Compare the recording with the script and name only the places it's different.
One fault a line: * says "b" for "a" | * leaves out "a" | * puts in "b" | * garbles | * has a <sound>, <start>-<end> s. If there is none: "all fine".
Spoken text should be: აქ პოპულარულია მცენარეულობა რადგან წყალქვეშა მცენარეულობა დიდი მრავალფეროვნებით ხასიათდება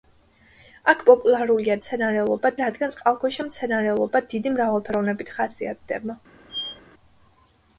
* has a squeak, 6.5-6.8 s